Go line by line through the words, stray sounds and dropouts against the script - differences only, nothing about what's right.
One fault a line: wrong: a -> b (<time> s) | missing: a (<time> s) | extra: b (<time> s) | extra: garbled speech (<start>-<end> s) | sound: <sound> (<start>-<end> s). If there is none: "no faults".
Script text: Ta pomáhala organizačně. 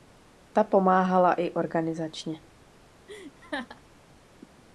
extra: i (1.3 s)
sound: laugh (3.1-3.8 s)